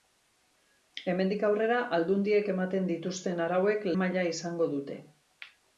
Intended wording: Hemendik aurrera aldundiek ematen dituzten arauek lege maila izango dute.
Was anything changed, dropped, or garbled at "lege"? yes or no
yes